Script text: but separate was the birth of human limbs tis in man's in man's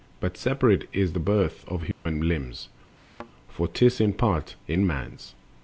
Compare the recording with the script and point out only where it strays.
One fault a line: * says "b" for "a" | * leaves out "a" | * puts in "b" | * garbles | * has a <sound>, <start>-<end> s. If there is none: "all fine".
* says "is" for "was"
* has a dropout, 1.9-2.1 s
* has a thud, 3.0-3.3 s
* puts in "for"
* says "part" for "man's"